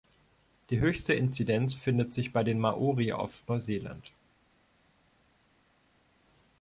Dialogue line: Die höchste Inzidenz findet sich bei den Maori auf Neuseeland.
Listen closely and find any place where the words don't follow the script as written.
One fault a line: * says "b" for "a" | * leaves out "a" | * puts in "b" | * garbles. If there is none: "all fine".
all fine